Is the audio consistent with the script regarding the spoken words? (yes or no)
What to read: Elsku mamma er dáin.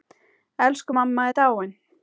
yes